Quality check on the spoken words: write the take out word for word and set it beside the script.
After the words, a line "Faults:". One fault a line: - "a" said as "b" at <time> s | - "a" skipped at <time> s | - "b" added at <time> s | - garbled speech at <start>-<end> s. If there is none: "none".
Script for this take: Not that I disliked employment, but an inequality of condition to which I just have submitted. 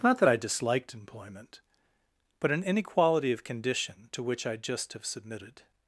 Not that I disliked employment, but an inequality of condition to which I just have submitted.
Faults:
none